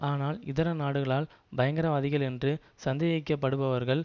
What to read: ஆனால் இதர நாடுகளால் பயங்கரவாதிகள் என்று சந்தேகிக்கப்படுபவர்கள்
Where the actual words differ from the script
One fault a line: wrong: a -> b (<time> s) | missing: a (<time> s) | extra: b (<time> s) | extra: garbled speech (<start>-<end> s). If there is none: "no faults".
no faults